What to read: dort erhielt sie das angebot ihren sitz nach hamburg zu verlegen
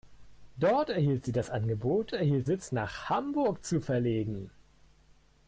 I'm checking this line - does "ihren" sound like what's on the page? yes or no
no